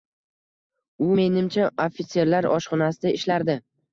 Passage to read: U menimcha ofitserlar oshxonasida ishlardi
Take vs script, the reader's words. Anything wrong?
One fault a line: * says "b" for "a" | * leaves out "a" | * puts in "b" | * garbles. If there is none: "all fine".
all fine